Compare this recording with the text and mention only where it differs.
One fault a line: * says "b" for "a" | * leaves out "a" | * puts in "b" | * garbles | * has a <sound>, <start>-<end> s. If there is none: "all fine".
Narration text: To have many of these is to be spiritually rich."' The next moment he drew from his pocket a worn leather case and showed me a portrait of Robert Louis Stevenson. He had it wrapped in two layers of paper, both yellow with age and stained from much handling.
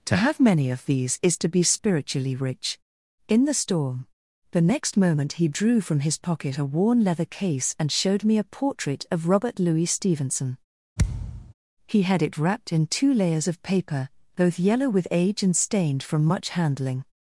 * puts in "in the storm"
* has a thud, 11.0-11.5 s